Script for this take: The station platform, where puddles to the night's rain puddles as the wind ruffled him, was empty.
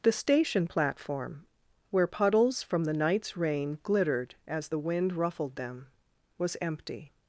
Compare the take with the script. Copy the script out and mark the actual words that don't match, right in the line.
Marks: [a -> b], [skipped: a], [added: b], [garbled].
The station platform, where puddles [to -> from] the night's rain [puddles -> glittered] as the wind ruffled [him, -> them] was empty.